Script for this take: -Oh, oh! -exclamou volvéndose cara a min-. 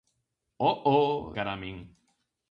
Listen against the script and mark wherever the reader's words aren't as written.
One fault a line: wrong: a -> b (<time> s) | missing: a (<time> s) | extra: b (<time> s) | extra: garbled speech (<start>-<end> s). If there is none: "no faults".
missing: exclamou volvéndose (1.4 s)